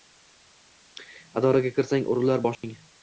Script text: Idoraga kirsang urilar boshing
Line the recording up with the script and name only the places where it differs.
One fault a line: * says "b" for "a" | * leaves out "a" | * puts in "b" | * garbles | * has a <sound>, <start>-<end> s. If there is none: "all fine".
* has a dropout, 2.5-2.6 s